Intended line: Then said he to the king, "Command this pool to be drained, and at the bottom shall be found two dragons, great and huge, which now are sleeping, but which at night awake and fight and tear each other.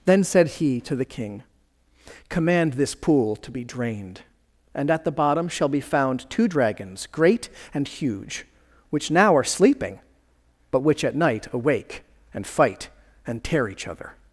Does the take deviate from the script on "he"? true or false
false